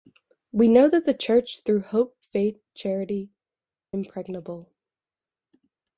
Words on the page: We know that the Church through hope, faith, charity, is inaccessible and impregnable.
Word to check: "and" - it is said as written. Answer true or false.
false